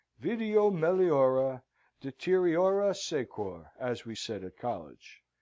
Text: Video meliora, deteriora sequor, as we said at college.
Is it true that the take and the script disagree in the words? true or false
false